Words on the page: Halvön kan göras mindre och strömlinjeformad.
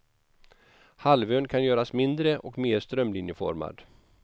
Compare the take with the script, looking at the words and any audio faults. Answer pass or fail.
fail